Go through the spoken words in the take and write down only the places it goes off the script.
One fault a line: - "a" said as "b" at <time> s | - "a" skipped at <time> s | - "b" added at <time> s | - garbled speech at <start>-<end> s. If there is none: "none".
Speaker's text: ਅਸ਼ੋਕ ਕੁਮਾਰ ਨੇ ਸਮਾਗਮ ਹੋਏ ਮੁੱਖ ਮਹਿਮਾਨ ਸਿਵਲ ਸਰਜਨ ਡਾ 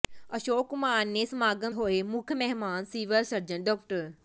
none